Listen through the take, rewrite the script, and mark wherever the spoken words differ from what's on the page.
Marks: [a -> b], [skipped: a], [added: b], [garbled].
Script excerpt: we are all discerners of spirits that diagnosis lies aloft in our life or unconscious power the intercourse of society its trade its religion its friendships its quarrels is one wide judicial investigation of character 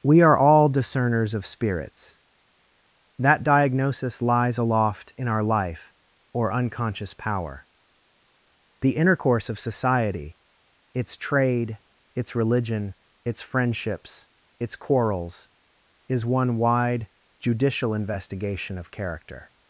we are all discerners of spirits that diagnosis lies aloft in our life or unconscious power the intercourse of society its trade its religion its friendships its quarrels is one wide judicial investigation of character